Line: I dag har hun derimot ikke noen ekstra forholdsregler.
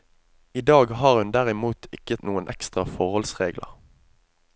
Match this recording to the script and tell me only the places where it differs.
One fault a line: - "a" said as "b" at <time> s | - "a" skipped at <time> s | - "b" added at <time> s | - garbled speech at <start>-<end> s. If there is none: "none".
none